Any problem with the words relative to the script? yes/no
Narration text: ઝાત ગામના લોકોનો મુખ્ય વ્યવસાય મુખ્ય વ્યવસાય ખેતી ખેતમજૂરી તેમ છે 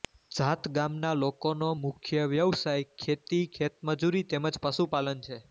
yes